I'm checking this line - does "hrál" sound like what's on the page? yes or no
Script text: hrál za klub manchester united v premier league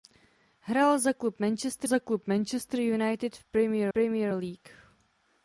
yes